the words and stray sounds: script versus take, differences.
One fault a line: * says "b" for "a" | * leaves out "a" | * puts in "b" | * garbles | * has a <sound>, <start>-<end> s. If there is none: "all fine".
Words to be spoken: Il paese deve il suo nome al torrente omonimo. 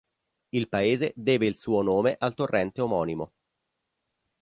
all fine